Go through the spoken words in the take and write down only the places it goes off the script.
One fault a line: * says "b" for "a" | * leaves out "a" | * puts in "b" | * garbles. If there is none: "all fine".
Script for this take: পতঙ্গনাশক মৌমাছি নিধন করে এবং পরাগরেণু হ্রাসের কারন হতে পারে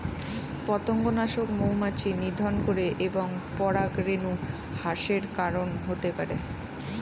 all fine